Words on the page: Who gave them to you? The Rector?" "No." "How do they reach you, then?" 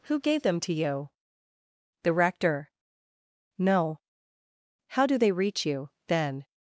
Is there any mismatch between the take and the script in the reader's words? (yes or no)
no